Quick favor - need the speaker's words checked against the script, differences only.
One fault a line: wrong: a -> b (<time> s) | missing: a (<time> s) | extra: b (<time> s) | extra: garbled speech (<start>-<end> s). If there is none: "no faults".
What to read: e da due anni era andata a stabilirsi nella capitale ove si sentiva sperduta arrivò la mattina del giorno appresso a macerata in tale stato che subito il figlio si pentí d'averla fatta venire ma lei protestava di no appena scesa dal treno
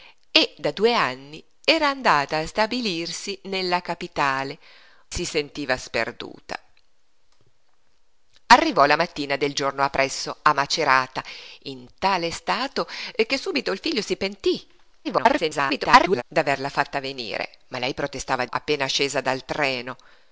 missing: ove (4.6 s)
extra: garbled speech (15.0-16.2 s)
missing: di no (18.4 s)